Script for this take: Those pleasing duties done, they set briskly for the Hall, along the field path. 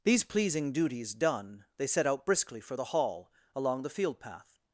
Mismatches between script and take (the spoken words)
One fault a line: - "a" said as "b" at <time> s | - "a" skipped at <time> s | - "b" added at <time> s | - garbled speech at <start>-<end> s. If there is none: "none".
- "Those" said as "These" at 0.0 s
- "out" added at 2.1 s